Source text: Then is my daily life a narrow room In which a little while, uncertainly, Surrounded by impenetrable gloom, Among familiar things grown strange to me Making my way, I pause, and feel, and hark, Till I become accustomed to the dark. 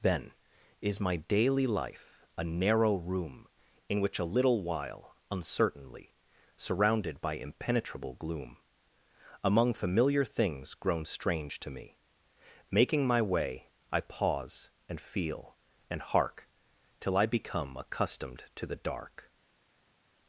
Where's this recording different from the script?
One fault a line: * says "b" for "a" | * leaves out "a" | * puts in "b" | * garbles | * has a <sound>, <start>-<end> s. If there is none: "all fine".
all fine